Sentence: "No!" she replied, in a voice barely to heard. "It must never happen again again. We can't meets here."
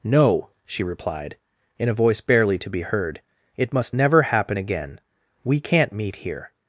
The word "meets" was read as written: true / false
false